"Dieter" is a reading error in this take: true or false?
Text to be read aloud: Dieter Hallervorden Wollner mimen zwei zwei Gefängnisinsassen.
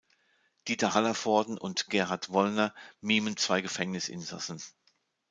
false